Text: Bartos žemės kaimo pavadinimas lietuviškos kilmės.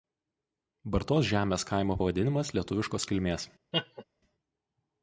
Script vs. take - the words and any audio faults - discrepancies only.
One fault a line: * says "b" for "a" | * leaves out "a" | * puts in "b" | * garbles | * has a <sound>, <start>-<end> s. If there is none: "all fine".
* has a laugh, 3.7-4.0 s